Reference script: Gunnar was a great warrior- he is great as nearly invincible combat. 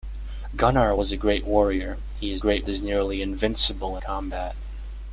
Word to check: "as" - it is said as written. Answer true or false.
true